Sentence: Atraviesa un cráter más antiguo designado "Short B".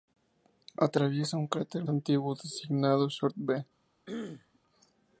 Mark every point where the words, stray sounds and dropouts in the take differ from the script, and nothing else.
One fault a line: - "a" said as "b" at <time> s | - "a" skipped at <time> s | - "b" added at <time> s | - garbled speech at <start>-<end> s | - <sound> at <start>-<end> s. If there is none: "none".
- "más" skipped at 1.9 s
- throat clearing at 4.1-4.6 s